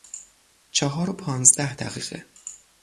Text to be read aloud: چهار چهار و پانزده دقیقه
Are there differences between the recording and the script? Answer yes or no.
yes